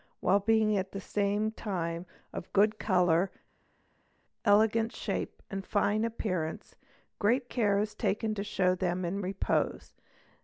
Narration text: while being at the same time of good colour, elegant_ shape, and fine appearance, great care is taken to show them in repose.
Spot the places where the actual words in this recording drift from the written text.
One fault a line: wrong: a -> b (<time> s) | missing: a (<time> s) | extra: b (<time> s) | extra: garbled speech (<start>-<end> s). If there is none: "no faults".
no faults